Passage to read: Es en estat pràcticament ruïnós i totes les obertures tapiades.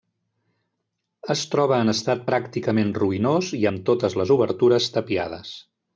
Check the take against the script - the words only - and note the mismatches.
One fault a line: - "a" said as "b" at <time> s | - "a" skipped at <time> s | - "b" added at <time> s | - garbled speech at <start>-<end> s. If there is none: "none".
- "troba" added at 1.5 s
- "amb" added at 3.7 s